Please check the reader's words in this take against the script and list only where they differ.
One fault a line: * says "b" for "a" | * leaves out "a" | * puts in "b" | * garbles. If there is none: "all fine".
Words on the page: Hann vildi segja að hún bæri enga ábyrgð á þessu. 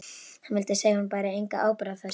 all fine